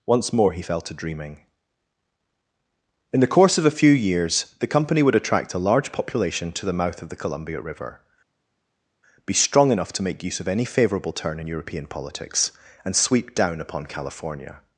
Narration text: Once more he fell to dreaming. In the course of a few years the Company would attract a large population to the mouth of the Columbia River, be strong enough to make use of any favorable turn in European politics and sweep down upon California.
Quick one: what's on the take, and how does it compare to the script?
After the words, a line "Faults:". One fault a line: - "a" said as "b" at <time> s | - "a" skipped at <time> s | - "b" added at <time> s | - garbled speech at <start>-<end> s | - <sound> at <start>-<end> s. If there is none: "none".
Once more he fell to dreaming. In the course of a few years the Company would attract a large population to the mouth of the Columbia River, be strong enough to make use of any favorable turn in European politics and sweep down upon California.
Faults:
none